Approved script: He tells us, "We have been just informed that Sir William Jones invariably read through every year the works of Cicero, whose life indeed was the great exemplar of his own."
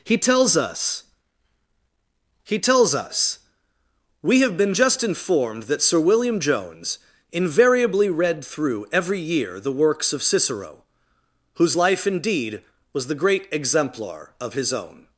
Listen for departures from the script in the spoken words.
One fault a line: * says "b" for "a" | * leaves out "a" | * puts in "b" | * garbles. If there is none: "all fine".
* puts in "he tells us"